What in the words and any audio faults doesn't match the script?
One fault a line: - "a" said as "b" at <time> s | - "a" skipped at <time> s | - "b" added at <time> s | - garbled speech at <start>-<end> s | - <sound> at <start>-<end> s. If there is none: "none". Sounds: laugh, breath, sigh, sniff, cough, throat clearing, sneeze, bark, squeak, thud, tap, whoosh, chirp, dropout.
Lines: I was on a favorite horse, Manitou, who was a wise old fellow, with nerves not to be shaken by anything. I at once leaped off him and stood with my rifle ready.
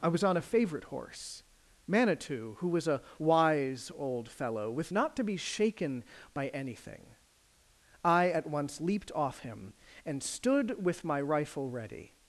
- "nerves" skipped at 4.9 s